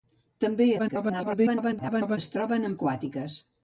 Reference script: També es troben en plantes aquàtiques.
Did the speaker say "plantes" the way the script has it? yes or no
no